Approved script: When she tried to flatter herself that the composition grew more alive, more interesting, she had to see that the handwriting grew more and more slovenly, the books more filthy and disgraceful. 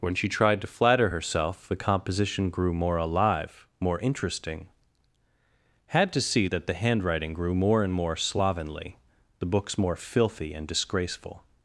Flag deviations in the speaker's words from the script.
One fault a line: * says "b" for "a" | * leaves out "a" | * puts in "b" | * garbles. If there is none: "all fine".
* leaves out "that"
* leaves out "she"